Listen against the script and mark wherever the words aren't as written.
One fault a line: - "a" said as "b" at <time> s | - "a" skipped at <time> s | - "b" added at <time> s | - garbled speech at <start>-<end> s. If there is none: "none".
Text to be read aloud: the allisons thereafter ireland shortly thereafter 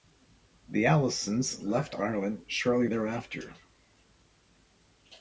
- "thereafter" said as "left" at 1.6 s